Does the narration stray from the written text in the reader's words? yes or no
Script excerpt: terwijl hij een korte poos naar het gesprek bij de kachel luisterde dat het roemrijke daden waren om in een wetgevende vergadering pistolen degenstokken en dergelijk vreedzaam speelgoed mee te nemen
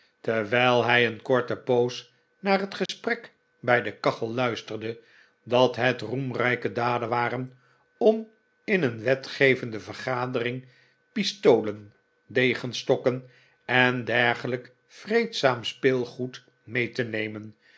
no